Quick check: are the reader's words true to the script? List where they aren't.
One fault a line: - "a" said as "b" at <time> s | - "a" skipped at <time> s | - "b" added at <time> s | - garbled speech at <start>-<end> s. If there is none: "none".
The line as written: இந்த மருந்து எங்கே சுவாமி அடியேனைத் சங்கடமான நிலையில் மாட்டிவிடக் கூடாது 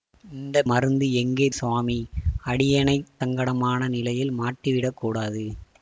none